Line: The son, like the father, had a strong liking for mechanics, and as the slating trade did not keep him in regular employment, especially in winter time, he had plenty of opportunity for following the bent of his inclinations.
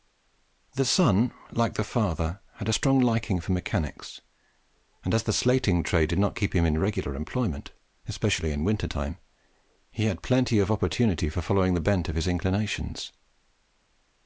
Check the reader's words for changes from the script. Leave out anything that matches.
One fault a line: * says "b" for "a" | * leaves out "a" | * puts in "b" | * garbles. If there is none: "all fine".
all fine